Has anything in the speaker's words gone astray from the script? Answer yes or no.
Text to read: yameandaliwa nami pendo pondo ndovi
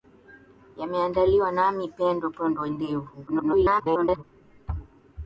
yes